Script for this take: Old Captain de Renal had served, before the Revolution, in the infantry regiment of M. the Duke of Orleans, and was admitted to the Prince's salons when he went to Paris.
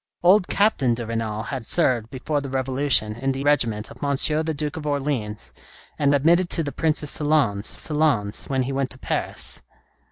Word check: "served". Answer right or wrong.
right